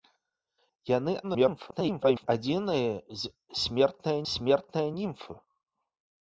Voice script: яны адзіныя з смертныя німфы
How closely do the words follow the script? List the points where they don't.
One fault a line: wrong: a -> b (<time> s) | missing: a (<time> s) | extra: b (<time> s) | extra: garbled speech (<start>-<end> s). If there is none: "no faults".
extra: garbled speech (1.2-2.3 s)
extra: смертныя (4.3 s)